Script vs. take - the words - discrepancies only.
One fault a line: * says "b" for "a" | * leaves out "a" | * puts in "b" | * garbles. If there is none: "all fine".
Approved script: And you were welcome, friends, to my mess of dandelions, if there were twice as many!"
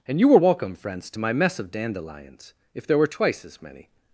all fine